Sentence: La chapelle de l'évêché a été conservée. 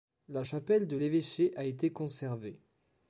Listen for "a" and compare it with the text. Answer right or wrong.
right